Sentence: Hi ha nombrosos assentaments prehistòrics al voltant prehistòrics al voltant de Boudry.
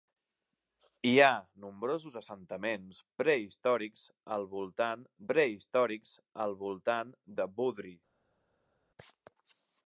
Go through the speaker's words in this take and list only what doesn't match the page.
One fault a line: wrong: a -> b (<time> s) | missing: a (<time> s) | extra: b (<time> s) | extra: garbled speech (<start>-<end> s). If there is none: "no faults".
no faults